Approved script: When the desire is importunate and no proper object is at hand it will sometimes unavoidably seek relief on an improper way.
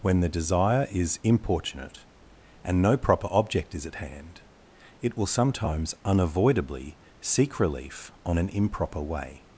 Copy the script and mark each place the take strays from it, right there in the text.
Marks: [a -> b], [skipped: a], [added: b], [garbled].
When the desire is importunate and no proper object is at hand it will sometimes unavoidably seek relief on an improper way.